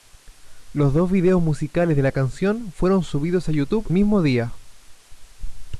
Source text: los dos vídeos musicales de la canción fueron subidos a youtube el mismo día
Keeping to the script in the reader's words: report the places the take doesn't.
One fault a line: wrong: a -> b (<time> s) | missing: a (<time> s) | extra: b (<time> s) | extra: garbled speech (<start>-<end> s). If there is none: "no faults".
missing: el (3.9 s)